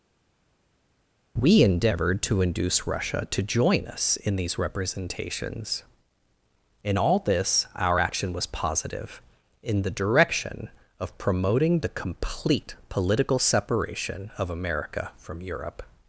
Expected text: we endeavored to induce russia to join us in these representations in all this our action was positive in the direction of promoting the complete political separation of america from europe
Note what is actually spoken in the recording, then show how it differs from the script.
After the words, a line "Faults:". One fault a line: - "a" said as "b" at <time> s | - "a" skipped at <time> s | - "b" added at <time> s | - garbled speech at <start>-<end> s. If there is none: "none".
we endeavored to induce russia to join us in these representations in all this our action was positive in the direction of promoting the complete political separation of america from europe
Faults:
none